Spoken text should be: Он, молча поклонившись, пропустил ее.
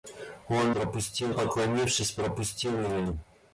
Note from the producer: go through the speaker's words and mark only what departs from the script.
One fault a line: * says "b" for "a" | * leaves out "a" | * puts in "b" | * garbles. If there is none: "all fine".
* says "пропустил" for "молча"